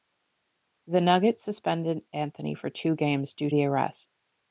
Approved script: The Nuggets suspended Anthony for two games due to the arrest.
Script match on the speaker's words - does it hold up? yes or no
no